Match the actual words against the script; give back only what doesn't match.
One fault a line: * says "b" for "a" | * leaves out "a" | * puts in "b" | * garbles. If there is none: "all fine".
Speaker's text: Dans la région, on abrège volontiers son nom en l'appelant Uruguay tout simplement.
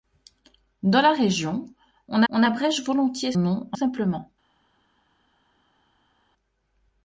* puts in "on"
* leaves out "son"
* leaves out "l'appelant Uruguay tout"